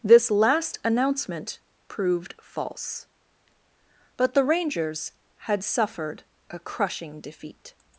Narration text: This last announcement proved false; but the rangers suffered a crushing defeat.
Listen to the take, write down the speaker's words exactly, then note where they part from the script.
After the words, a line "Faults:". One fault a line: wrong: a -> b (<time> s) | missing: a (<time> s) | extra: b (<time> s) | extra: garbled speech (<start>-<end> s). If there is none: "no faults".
This last announcement proved false; but the rangers had suffered a crushing defeat.
Faults:
extra: had (5.3 s)